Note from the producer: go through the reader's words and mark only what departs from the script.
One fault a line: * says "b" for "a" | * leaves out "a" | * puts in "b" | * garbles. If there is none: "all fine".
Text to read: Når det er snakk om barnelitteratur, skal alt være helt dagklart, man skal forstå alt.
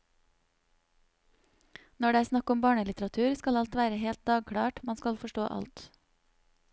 all fine